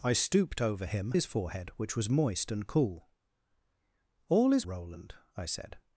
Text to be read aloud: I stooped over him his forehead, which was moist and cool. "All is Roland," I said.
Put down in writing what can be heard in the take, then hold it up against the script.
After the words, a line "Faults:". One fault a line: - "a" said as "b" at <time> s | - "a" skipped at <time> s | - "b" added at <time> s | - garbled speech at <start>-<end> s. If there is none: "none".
I stooped over him his forehead, which was moist and cool. "All is Roland," I said.
Faults:
none